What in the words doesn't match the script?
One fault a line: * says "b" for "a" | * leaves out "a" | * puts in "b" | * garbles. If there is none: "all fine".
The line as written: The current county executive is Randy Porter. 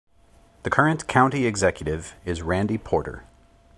all fine